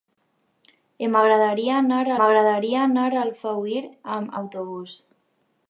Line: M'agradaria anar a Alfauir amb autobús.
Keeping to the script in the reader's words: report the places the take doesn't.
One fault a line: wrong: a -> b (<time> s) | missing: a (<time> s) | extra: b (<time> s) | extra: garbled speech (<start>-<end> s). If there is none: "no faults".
extra: m'agradaria anar a (2.2 s)